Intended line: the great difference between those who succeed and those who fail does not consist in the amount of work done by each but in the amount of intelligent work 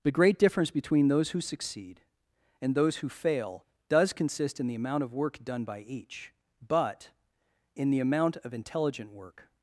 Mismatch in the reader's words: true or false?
true